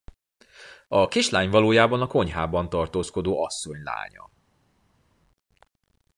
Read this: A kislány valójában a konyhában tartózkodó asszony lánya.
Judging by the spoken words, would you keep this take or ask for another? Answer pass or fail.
pass